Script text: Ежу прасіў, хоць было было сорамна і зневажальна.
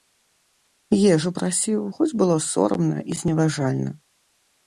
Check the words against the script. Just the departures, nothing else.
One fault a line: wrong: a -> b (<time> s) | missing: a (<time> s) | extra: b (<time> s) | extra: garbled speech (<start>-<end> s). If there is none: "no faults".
missing: было (2.4 s)